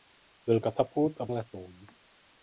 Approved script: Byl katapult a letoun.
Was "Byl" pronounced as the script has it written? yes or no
yes